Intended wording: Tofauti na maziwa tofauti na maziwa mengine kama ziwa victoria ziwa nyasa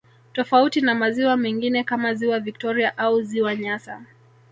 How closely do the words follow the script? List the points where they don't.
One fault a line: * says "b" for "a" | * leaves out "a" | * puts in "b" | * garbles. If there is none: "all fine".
* leaves out "tofauti na maziwa"
* puts in "au"